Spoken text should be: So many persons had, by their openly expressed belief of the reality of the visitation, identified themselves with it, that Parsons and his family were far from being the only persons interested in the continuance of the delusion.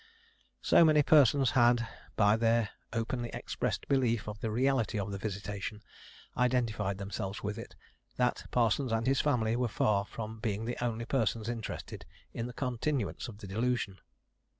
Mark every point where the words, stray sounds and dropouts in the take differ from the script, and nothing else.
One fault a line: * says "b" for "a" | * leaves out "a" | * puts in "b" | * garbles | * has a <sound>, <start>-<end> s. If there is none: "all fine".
all fine